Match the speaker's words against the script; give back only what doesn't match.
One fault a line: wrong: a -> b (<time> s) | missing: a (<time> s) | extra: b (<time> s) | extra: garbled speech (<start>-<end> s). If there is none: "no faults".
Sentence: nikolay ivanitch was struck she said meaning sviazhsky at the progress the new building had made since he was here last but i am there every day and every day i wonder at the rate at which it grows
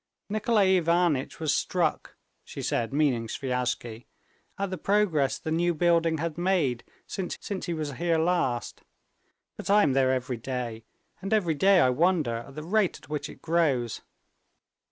extra: since (7.4 s)